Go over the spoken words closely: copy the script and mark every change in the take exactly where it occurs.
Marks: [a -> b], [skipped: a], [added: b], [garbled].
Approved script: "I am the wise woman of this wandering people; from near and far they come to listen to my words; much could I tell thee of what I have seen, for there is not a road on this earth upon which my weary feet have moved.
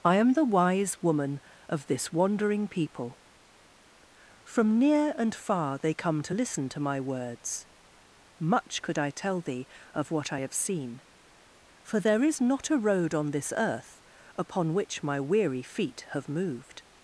"I am the wise woman of this wandering people; from near and far they come to listen to my words; much could I tell thee of what I have seen, for there is not a road on this earth upon which my weary feet have moved.